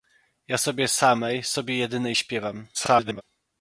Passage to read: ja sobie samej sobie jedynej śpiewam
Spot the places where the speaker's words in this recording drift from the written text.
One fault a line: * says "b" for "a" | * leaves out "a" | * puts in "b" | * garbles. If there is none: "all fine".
* garbles